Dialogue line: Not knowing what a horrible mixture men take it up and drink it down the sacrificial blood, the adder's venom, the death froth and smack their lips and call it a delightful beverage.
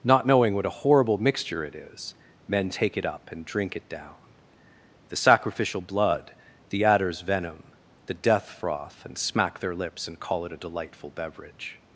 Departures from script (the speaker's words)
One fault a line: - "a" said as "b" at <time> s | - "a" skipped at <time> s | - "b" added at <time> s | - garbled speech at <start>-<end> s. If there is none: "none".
- "it is" added at 1.6 s